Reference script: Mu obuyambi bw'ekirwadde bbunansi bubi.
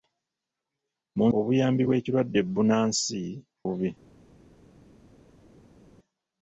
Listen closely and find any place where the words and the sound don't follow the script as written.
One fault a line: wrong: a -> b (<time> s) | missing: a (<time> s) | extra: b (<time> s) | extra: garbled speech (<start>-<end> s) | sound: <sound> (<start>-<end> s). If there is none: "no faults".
no faults